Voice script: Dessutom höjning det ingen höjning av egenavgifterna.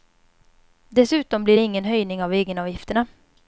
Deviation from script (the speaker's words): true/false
true